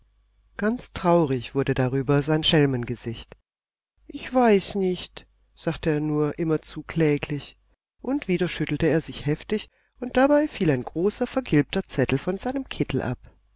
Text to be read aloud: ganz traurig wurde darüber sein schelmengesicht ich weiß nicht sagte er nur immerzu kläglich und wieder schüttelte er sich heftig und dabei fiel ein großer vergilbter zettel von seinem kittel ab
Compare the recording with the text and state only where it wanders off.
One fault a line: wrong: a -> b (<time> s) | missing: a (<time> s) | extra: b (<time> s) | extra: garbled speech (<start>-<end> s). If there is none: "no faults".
no faults